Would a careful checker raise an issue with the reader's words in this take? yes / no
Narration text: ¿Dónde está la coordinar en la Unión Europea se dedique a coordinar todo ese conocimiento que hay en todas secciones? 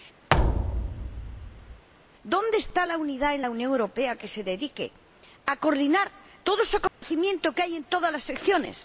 yes